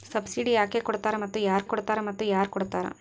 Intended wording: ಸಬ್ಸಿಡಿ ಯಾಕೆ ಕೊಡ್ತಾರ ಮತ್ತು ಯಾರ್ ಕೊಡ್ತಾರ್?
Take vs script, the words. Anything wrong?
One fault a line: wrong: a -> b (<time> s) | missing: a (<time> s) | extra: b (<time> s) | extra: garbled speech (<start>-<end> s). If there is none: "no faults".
extra: ಕೊಡ್ತಾರ ಮತ್ತು ಯಾರ್ (1.6 s)